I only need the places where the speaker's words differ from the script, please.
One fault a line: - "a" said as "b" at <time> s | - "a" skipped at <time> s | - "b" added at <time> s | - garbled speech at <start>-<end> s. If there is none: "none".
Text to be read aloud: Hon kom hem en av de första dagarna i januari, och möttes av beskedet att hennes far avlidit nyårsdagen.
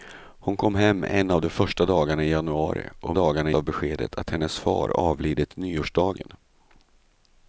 - "möttes" said as "dagarna" at 3.1 s